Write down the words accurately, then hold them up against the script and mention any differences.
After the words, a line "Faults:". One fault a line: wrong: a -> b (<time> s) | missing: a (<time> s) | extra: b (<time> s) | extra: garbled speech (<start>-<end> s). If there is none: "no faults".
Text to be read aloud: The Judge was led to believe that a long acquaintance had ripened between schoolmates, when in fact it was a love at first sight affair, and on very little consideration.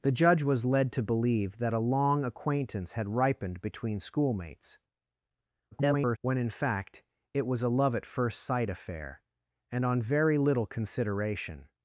The Judge was led to believe that a long acquaintance had ripened between schoolmates, [garbled] when in fact it was a love at first sight affair, and on very little consideration.
Faults:
extra: garbled speech (5.7-6.2 s)